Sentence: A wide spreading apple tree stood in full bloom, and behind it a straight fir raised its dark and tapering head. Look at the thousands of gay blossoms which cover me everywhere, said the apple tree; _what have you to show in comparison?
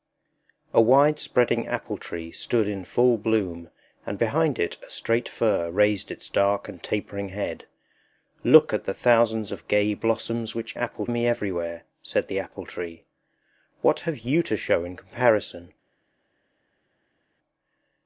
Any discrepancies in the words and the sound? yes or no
yes